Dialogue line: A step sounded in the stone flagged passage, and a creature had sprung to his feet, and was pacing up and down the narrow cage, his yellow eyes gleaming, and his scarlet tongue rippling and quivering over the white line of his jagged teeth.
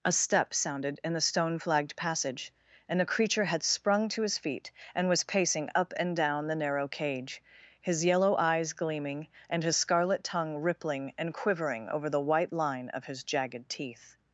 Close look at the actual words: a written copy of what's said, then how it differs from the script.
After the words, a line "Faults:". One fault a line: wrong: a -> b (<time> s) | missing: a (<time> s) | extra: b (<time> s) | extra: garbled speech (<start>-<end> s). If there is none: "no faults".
A step sounded in the stone flagged passage, and a creature had sprung to his feet, and was pacing up and down the narrow cage, his yellow eyes gleaming, and his scarlet tongue rippling and quivering over the white line of his jagged teeth.
Faults:
no faults